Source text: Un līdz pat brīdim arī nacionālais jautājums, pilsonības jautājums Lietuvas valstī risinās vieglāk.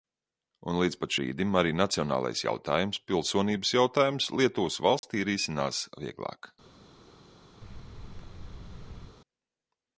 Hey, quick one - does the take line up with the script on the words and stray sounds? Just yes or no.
no